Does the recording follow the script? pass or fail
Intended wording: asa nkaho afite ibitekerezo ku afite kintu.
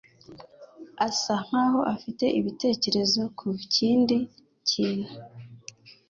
fail